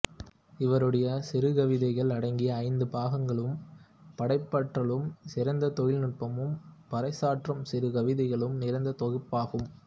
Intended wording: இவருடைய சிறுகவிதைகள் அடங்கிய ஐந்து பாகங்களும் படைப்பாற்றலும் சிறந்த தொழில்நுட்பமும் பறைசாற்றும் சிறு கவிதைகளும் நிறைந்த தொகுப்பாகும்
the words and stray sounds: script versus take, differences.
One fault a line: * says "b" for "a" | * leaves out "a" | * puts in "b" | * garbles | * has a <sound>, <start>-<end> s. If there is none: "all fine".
all fine